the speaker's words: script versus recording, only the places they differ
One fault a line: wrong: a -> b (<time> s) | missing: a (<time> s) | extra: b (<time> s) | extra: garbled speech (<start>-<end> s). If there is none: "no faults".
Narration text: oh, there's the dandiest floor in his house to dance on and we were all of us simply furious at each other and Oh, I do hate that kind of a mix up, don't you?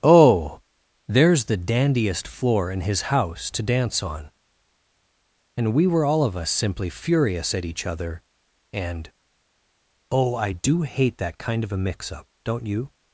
no faults